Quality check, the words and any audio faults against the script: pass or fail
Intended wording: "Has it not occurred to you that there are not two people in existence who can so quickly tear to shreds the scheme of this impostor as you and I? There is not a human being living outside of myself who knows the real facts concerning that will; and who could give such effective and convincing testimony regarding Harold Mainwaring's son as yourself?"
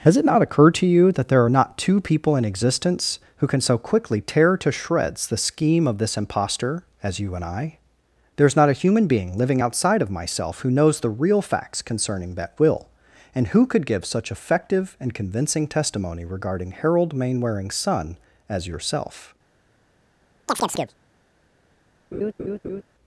fail